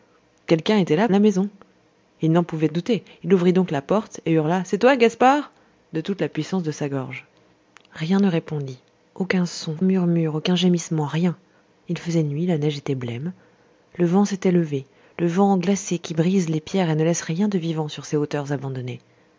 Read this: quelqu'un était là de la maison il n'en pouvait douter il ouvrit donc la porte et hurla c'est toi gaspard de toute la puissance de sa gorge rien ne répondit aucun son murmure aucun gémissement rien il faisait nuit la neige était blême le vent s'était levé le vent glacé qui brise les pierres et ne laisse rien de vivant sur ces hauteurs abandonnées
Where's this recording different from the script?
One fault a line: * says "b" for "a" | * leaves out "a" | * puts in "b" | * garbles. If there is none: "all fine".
all fine